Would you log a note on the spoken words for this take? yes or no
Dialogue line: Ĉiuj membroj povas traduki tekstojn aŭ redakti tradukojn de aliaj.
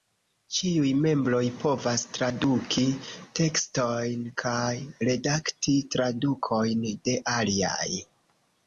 yes